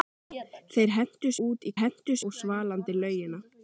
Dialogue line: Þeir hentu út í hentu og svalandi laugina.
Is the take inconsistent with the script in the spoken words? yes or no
no